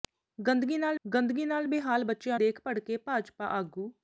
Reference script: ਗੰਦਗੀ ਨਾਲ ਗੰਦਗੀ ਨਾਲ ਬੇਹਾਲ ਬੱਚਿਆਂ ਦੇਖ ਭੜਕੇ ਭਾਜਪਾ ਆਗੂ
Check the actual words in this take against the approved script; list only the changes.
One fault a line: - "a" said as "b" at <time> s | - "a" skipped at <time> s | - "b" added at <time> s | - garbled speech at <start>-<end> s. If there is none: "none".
none